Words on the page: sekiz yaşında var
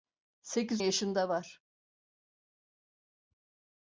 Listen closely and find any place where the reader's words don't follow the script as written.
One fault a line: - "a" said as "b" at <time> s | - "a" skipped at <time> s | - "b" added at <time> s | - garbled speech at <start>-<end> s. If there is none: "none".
none